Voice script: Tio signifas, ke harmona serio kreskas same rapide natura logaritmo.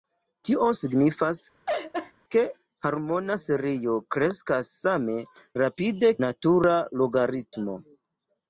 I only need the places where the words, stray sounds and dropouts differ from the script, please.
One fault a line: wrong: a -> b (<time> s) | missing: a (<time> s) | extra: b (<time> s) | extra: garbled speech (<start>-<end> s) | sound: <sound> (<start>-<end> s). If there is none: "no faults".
sound: laugh (1.7-2.1 s)